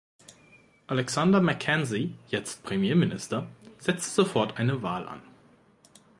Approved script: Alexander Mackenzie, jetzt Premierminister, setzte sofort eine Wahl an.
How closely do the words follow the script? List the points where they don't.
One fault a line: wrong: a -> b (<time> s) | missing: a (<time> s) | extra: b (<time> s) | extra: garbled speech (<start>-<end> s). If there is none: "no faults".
no faults